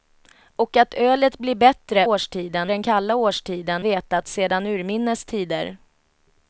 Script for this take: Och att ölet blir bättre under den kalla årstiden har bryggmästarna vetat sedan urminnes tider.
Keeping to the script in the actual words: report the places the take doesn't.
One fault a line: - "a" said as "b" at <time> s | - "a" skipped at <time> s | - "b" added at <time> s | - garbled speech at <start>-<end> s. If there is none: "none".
- "under" said as "årstiden" at 2.0 s
- "har bryggmästarna" skipped at 3.8 s